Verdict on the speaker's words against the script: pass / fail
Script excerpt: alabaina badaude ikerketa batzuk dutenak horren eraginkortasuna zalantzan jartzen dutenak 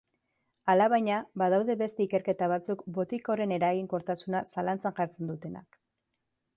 fail